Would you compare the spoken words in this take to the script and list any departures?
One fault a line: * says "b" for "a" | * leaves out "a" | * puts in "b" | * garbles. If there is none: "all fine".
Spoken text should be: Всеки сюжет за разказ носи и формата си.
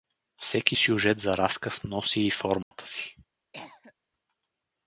all fine